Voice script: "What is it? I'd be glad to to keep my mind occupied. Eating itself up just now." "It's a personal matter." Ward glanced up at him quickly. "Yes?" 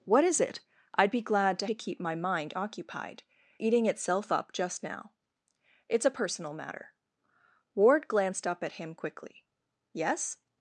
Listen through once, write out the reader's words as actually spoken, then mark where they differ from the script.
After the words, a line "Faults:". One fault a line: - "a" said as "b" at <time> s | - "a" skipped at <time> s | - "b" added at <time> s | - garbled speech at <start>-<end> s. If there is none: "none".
"What is it? I'd be glad to to keep my mind occupied. Eating itself up just now." "It's a personal matter." Ward glanced up at him quickly. "Yes?"
Faults:
none